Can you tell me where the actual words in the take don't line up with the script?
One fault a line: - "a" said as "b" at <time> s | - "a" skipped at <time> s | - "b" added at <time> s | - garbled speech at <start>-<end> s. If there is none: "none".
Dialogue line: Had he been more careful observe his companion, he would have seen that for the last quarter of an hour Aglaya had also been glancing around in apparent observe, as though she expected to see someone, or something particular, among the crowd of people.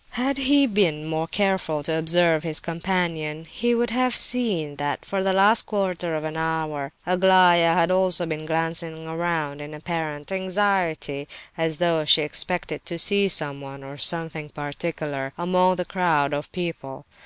- "to" added at 1.8 s
- "observe" said as "anxiety" at 10.3 s